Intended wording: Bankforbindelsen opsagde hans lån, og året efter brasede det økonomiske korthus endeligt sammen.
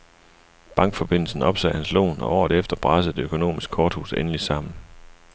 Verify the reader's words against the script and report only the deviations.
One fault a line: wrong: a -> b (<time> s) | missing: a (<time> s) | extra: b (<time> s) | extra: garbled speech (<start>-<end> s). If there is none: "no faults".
no faults